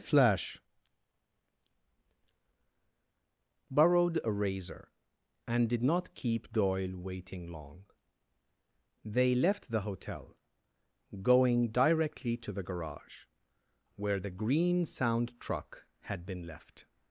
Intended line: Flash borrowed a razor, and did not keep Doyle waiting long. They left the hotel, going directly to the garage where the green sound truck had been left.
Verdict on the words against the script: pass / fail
pass